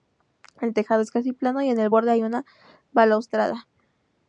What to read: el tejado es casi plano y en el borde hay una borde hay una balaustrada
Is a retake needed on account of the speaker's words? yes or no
yes